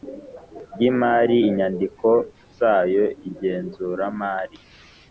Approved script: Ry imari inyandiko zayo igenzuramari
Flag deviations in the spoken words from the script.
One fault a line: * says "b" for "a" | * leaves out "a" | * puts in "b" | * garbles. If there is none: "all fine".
all fine